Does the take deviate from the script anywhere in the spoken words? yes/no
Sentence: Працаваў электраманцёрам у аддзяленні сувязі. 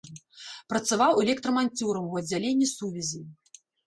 no